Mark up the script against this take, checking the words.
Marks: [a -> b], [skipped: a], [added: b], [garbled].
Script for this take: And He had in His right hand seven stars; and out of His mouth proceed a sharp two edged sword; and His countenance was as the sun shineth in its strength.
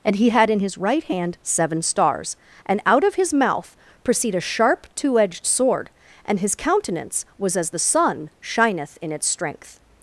And He had in His right hand seven stars; and out of His mouth proceed a sharp two edged sword; and His countenance was as the sun shineth in its strength.